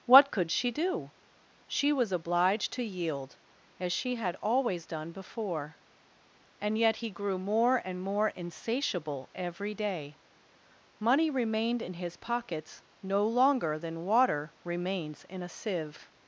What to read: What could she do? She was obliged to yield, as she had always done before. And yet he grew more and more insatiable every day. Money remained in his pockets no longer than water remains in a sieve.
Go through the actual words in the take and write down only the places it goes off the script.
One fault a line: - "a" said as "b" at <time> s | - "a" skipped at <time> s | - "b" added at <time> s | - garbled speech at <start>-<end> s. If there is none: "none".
none